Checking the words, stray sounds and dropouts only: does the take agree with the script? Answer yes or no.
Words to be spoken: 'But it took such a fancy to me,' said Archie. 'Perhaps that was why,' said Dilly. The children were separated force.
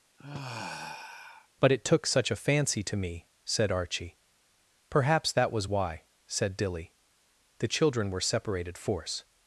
no